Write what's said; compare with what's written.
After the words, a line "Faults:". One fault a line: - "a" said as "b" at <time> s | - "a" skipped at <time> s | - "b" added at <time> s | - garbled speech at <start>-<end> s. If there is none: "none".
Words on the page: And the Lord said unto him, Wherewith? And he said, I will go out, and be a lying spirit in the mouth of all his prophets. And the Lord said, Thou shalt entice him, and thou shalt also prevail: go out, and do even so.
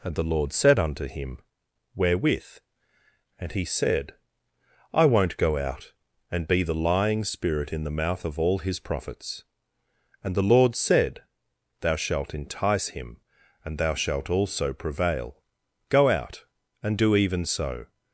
And the Lord said unto him, Wherewith? And he said, I won't go out, and be the lying spirit in the mouth of all his prophets. And the Lord said, Thou shalt entice him, and thou shalt also prevail: go out, and do even so.
Faults:
- "will" said as "won't" at 5.0 s
- "a" said as "the" at 6.6 s